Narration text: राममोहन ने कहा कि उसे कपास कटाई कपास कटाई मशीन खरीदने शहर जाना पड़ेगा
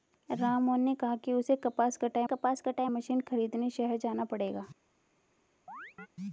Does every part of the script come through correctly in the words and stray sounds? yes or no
no